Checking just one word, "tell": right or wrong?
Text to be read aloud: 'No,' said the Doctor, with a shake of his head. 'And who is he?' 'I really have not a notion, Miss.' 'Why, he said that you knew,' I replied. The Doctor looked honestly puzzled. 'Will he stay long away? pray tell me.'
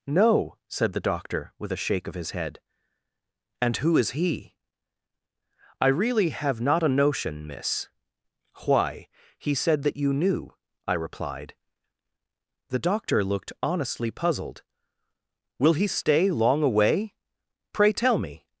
right